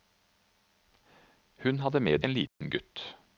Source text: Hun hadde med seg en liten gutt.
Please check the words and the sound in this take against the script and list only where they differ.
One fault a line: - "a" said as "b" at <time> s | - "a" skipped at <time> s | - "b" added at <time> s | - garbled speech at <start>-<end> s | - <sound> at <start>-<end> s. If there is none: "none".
- "seg" skipped at 2.2 s
- dropout at 2.5-2.6 s